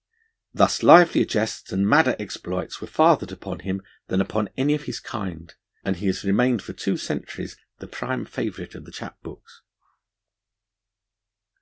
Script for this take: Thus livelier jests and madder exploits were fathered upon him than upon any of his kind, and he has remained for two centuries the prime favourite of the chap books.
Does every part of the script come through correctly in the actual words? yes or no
yes